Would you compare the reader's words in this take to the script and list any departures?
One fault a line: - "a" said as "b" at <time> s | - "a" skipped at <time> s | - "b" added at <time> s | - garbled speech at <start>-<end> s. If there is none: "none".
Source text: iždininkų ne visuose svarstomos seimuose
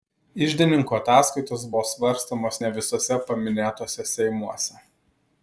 - "ataskaitos buvo svarstomos" added at 1.0 s
- "svarstomos" said as "paminėtuose" at 3.3 s